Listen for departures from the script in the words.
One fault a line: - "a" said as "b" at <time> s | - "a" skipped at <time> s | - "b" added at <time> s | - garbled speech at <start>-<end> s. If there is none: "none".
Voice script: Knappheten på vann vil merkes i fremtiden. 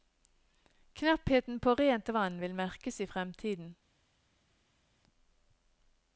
- "rent" added at 1.8 s